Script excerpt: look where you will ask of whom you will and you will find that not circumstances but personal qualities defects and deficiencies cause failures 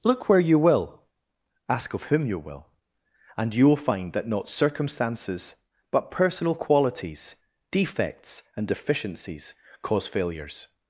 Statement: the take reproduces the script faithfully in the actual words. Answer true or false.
true